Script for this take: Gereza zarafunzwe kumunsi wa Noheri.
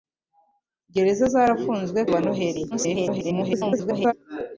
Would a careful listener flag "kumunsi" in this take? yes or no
yes